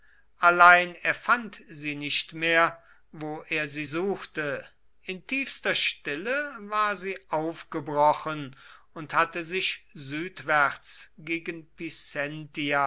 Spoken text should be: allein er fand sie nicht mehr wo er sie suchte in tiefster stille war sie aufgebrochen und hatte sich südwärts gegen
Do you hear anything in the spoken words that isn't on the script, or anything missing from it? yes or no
no